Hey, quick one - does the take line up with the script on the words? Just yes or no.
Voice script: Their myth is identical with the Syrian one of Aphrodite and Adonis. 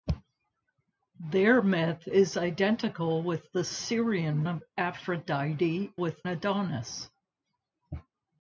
no